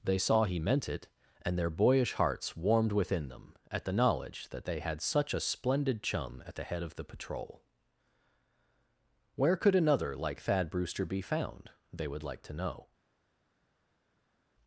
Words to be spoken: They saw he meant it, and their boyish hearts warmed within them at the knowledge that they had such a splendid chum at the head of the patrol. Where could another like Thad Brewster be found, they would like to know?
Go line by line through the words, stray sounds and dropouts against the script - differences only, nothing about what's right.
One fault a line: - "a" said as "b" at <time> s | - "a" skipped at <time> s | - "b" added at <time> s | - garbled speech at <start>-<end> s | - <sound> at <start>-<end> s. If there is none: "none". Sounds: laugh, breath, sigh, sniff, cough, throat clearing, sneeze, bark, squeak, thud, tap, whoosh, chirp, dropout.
none